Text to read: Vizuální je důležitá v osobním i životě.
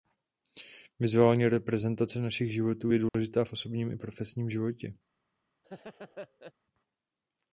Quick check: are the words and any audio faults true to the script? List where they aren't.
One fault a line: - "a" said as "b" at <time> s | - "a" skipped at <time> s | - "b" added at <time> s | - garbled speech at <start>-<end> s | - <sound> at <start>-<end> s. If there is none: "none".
- "reprezentace našich životů" added at 1.5 s
- dropout at 3.1-3.1 s
- "profesním" added at 4.0 s
- laugh at 5.6-6.5 s